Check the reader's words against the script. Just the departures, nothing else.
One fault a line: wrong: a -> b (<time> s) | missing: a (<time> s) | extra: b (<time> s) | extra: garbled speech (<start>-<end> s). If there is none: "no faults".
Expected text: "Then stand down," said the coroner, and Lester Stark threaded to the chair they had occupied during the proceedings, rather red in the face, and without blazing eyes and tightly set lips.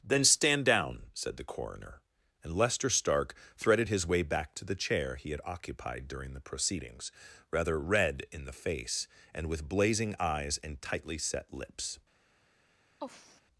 extra: his way back (3.9 s)
wrong: they -> he (5.2 s)
wrong: without -> with (9.5 s)